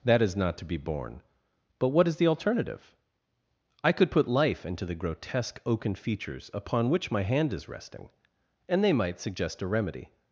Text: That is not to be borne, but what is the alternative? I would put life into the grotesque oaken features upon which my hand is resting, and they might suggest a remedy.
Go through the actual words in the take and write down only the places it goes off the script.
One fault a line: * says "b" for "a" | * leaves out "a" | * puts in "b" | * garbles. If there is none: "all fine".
* says "could" for "would"